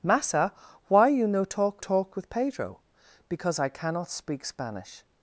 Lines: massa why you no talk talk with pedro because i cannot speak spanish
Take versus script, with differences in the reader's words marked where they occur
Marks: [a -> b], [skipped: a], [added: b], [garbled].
massa why you no talk talk with pedro because i cannot speak spanish